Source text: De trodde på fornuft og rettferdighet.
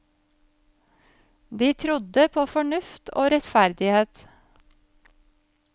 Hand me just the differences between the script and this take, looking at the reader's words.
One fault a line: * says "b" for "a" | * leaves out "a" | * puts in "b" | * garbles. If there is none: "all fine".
all fine